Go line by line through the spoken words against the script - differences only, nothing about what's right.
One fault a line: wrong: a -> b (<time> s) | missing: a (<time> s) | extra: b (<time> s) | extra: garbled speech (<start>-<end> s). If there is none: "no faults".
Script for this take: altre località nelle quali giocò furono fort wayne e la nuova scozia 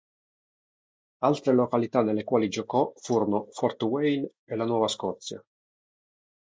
no faults